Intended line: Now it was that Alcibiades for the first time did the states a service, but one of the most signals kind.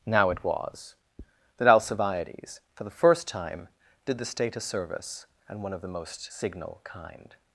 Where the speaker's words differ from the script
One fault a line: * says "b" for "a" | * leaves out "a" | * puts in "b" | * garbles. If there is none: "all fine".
* says "state" for "states"
* says "and" for "but"
* says "signal" for "signals"